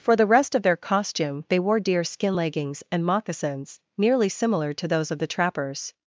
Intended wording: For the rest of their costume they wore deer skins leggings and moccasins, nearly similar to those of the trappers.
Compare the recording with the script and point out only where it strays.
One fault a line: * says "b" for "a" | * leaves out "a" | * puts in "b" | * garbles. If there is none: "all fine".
* says "skin" for "skins"